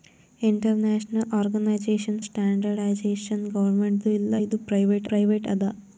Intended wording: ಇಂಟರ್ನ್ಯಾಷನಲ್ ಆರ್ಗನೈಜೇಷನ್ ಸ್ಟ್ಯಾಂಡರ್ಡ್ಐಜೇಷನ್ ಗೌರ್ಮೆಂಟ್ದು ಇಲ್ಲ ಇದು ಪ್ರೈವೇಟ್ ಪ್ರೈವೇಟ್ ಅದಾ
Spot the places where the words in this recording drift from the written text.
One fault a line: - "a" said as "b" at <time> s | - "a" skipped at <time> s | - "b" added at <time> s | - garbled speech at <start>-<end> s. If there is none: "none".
none